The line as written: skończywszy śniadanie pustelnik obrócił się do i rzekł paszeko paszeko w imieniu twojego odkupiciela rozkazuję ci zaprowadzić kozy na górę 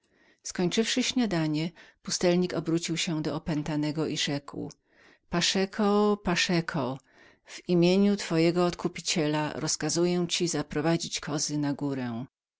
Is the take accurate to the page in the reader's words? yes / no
no